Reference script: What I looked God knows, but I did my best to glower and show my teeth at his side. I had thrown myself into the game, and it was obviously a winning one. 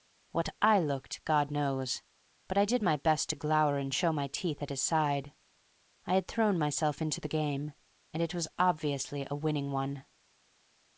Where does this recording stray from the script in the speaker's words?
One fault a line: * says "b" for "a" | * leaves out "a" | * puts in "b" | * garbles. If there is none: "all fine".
all fine